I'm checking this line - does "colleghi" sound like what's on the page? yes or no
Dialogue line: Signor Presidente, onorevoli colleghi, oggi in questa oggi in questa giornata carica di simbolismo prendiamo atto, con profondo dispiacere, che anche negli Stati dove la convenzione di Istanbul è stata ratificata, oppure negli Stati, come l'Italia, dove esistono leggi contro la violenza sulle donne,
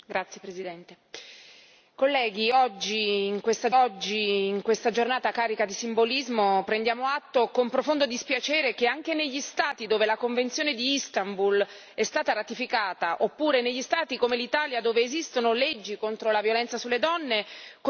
yes